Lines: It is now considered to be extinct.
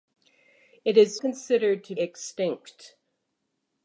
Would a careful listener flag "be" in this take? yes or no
yes